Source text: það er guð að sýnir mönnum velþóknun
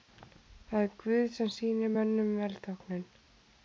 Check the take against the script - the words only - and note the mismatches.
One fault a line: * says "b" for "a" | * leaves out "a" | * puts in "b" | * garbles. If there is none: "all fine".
* says "sem" for "að"